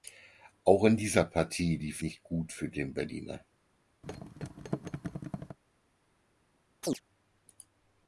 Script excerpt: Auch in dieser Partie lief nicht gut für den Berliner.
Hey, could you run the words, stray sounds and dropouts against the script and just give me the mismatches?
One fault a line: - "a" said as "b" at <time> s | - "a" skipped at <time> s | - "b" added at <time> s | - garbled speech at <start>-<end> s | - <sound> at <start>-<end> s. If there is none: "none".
- thud at 4.0-5.6 s
- chirp at 6.8-7.0 s